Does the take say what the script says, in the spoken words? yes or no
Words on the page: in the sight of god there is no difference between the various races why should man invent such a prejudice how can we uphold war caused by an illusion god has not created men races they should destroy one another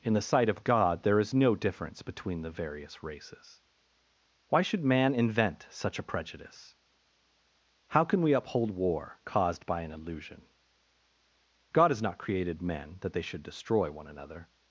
no